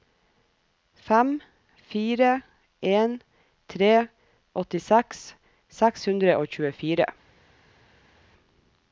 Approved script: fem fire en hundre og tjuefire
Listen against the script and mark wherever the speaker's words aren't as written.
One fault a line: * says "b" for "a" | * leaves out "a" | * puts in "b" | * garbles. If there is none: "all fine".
* puts in "tre åttiseks seks"